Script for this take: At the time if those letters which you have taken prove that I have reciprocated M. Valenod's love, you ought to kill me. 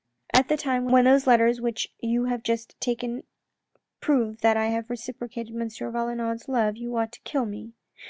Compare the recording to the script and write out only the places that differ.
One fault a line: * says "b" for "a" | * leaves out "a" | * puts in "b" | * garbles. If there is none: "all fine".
* says "when" for "if"
* puts in "just"